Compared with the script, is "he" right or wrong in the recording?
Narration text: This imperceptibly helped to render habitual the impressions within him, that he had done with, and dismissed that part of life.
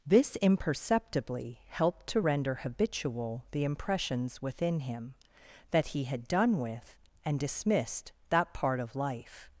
right